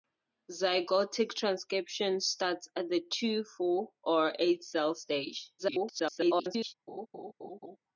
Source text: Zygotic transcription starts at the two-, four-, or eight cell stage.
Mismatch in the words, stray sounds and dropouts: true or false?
true